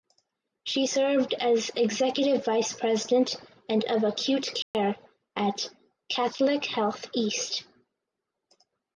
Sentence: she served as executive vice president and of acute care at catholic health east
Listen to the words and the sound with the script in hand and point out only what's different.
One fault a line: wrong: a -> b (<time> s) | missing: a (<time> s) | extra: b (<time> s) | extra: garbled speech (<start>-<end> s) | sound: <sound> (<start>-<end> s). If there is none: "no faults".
sound: dropout (4.6-4.7 s)